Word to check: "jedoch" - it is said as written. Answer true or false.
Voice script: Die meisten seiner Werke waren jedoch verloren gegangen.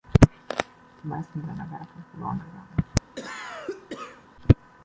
false